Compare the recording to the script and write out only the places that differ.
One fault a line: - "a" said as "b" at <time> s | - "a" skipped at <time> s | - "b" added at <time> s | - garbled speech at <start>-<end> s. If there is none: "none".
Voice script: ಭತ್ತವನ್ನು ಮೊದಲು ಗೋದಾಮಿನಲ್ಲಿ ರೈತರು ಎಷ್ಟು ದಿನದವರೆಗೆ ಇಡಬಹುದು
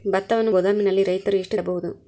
- "ಮೊದಲು" skipped at 0.5 s
- "ದಿನದವರೆಗೆ" skipped at 1.6 s